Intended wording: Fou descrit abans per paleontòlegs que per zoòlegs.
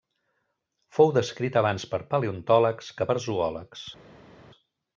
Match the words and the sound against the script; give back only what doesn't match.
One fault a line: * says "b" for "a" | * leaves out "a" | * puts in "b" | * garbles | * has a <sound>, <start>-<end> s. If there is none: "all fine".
all fine